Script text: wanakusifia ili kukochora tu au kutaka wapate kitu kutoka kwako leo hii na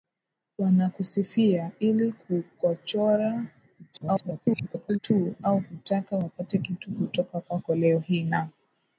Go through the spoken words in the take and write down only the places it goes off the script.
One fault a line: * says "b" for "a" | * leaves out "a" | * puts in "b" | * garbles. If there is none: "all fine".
* garbles